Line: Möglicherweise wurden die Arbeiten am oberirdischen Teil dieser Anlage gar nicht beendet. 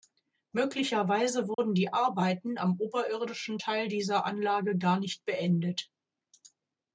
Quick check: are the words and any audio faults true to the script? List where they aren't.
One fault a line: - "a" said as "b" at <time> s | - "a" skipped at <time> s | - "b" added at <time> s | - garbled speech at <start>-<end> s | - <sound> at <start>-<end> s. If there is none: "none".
- dropout at 1.5-1.6 s